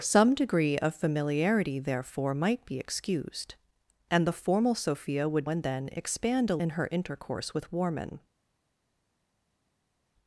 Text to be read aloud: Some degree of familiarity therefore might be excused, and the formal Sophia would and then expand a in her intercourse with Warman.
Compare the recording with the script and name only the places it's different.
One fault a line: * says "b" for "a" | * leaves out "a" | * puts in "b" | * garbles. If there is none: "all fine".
all fine